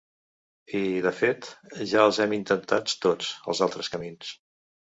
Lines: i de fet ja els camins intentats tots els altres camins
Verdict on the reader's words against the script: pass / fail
fail